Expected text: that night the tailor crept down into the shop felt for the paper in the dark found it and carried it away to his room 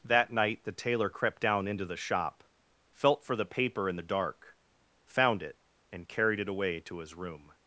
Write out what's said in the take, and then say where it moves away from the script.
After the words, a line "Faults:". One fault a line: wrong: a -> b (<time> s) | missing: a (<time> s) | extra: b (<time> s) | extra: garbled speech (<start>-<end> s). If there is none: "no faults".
that night the tailor crept down into the shop felt for the paper in the dark found it and carried it away to his room
Faults:
no faults